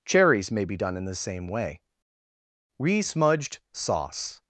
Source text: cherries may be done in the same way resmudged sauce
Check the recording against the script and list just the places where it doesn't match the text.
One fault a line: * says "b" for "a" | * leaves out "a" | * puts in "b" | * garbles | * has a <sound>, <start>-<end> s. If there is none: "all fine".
all fine